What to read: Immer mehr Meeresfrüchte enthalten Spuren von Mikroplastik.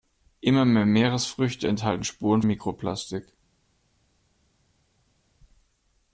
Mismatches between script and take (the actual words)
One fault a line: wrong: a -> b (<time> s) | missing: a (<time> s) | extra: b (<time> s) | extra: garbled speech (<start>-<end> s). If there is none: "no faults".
missing: von (2.4 s)